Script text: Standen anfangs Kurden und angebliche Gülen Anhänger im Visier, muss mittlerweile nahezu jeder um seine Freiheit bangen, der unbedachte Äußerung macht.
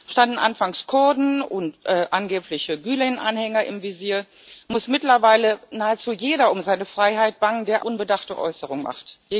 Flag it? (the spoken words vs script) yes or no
no